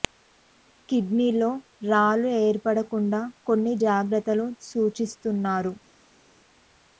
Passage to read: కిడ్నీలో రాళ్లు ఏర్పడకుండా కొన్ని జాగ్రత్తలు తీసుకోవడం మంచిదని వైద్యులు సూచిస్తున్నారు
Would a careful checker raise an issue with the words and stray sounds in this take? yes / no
yes